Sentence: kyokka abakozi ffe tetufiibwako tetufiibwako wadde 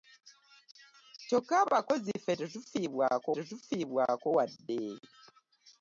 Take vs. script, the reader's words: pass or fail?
pass